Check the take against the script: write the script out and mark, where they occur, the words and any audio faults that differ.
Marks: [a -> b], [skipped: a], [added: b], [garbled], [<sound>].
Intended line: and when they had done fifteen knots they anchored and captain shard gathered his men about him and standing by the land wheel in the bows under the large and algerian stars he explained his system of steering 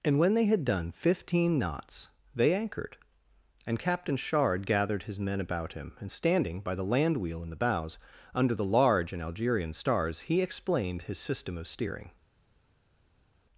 and when they had done fifteen knots they anchored and captain shard gathered his men about him and standing by the land wheel in the bows under the large and algerian stars he explained his system of steering